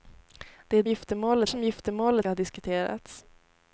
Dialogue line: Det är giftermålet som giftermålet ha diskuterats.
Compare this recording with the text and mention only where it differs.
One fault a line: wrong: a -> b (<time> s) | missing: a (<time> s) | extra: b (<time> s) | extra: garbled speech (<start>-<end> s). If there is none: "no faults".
no faults